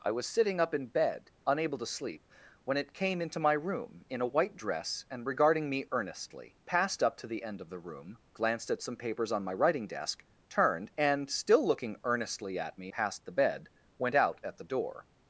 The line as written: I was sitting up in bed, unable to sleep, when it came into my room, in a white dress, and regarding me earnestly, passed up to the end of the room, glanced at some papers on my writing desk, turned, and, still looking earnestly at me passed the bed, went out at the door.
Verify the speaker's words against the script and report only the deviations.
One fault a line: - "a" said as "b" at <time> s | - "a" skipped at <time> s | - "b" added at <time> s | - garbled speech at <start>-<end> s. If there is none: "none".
none